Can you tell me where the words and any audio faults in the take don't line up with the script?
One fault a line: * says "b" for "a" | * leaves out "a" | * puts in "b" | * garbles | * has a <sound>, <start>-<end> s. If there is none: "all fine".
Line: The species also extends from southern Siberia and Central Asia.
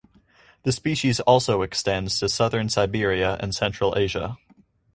* says "to" for "from"